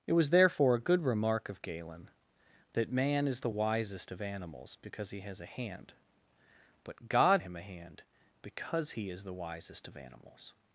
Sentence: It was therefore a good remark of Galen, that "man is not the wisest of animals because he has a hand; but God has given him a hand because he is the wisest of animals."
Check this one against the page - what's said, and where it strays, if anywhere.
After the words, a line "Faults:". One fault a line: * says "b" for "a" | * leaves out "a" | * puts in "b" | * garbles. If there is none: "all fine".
It was therefore a good remark of Galen, that "man is the wisest of animals because he has a hand; but God him a hand because he is the wisest of animals."
Faults:
* leaves out "not"
* leaves out "has given"